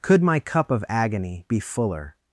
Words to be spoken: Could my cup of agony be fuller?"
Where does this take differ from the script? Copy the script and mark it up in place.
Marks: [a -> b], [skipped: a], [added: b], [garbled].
Could my cup of agony be fuller?"